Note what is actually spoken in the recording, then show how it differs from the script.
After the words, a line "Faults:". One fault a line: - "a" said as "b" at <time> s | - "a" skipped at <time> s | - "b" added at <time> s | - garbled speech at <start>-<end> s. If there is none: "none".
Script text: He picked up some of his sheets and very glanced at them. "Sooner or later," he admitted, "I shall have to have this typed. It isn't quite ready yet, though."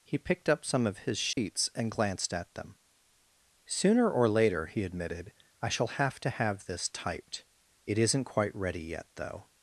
He picked up some of his sheets and glanced at them. "Sooner or later," he admitted, "I shall have to have this typed. It isn't quite ready yet, though."
Faults:
- "very" skipped at 1.9 s